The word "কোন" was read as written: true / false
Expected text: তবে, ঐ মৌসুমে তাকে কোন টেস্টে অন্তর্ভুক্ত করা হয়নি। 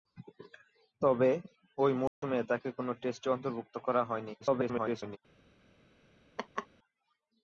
true